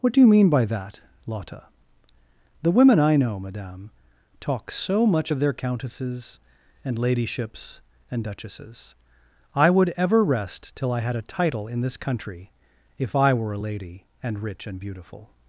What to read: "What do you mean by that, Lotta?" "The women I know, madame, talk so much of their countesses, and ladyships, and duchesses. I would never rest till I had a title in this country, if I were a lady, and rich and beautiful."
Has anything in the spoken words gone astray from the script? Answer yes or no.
yes